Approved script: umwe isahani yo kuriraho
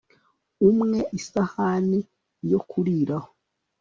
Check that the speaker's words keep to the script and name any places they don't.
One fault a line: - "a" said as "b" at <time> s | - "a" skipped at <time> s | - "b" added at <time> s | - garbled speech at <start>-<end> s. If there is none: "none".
none